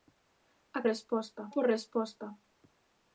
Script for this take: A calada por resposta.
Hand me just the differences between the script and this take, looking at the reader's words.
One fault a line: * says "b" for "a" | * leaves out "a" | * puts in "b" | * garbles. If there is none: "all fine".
* says "resposta" for "calada"